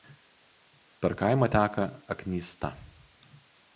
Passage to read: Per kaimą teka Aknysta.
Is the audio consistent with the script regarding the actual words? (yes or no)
yes